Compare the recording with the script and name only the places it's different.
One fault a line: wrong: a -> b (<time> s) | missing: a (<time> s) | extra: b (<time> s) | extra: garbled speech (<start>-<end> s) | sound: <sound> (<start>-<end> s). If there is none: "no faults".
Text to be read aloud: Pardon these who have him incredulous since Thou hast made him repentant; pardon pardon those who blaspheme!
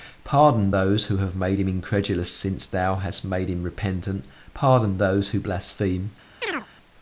wrong: these -> those (0.7 s)
extra: made (1.4 s)
missing: pardon (5.0 s)
sound: chirp (6.4-6.7 s)